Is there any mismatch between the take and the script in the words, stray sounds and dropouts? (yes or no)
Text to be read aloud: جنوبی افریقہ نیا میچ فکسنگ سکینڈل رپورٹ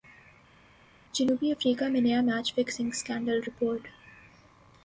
yes